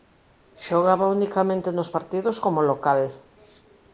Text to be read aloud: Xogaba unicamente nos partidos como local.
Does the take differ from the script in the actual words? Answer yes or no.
no